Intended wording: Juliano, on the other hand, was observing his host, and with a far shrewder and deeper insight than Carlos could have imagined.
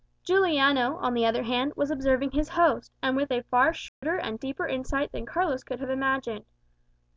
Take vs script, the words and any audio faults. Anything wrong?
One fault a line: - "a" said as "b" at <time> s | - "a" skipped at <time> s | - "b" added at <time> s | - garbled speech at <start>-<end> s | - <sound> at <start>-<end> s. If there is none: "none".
- dropout at 3.9-4.0 s